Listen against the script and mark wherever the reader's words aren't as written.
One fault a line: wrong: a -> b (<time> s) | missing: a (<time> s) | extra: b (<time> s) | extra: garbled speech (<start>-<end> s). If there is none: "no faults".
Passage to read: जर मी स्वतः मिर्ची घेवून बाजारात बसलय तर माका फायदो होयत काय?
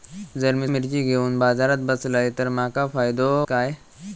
missing: स्वतः (0.7 s)
missing: होयत (3.3 s)